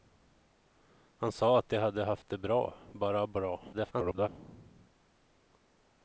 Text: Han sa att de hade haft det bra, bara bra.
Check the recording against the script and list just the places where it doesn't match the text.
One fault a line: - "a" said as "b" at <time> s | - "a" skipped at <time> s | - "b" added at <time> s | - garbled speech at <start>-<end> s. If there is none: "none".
- garbled speech at 3.7-4.3 s